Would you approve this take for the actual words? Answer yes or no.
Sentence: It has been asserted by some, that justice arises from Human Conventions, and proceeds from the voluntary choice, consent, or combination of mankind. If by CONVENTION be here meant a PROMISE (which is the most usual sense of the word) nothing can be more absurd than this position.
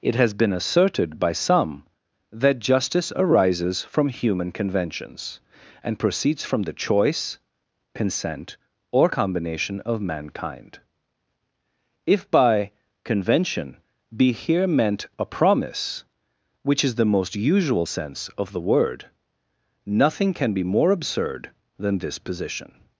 no